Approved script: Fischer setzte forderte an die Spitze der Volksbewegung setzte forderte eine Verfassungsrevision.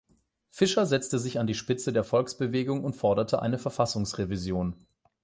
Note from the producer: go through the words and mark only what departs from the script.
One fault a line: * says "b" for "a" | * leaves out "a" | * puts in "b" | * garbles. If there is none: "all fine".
* says "sich" for "forderte"
* says "und" for "setzte"